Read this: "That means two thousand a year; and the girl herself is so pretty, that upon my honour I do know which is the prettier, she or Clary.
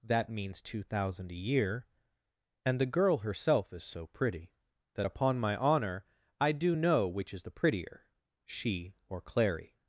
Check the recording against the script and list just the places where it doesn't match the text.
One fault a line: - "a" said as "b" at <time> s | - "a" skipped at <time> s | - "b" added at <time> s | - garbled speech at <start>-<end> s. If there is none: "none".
none